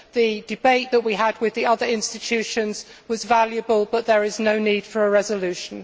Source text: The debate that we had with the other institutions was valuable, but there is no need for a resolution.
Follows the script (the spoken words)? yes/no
yes